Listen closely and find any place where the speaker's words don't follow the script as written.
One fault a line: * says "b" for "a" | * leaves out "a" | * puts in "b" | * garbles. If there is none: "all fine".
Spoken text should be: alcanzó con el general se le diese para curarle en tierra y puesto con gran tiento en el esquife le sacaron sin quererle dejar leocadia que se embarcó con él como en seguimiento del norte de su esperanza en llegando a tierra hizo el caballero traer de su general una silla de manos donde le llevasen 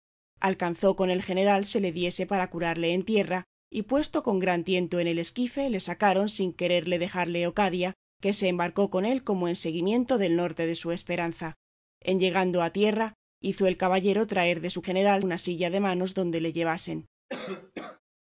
all fine